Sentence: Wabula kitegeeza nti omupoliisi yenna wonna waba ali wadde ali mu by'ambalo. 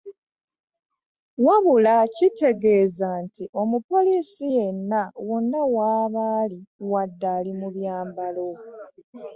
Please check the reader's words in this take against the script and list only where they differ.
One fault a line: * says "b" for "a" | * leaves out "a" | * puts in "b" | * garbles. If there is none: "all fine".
all fine